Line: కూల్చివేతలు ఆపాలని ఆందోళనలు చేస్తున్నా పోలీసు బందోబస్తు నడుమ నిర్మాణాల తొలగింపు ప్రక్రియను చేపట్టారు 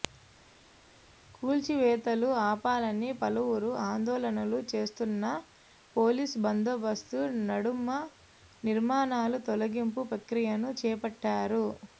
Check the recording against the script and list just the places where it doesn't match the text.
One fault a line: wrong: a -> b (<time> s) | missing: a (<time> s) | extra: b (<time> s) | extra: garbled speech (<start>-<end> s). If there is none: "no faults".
extra: పలువురు (3.2 s)